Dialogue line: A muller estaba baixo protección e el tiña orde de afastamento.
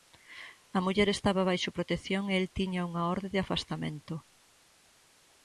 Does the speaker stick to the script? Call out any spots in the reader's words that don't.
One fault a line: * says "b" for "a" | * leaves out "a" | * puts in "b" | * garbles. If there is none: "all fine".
* puts in "unha"